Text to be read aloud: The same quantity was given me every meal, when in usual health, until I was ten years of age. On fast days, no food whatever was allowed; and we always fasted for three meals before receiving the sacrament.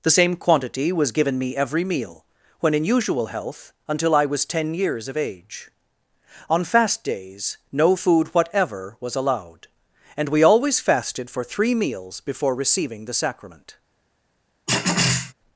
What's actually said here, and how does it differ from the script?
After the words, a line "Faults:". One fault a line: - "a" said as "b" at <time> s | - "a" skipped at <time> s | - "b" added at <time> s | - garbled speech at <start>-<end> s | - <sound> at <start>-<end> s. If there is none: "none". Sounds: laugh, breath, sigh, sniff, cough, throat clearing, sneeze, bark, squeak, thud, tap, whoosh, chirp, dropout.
The same quantity was given me every meal, when in usual health, until I was ten years of age. On fast days, no food whatever was allowed; and we always fasted for three meals before receiving the sacrament.
Faults:
- throat clearing at 14.7-15.3 s